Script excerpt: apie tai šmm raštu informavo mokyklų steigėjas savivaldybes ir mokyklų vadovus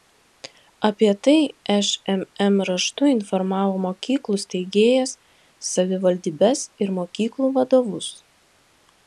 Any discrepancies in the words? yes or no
no